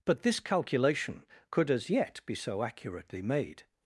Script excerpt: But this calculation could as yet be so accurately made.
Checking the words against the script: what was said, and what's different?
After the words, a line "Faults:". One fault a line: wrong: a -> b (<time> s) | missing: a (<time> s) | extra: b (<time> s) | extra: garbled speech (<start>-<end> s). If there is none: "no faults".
But this calculation could as yet be so accurately made.
Faults:
no faults